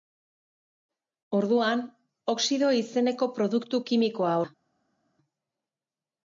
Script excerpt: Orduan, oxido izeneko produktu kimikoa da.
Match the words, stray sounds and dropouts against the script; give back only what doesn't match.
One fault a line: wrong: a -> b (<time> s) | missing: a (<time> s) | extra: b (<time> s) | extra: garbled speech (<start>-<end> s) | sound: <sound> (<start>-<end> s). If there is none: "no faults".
no faults